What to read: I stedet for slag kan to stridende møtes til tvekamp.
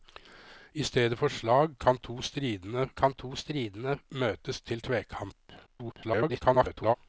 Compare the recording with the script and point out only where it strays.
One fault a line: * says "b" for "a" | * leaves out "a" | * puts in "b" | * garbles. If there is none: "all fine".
* puts in "kan to stridende"
* garbles